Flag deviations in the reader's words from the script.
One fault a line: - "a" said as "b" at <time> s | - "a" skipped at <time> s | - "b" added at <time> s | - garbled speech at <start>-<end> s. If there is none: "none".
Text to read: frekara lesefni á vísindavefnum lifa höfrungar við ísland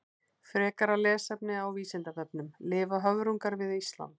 none